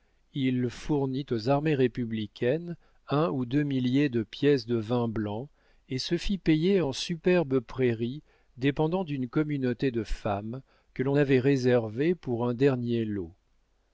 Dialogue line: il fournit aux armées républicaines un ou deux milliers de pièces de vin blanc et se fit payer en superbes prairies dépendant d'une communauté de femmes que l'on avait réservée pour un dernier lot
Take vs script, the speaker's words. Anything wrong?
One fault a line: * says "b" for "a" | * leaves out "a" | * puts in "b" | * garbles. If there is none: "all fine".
all fine